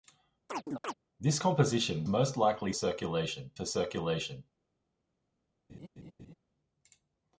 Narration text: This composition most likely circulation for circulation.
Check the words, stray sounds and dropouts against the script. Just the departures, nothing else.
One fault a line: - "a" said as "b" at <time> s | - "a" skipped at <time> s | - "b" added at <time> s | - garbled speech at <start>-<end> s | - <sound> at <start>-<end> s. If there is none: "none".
- chirp at 0.5-0.9 s
- laugh at 5.7-6.3 s